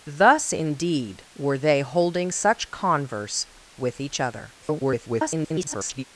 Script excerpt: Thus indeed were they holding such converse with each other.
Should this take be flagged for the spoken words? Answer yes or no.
yes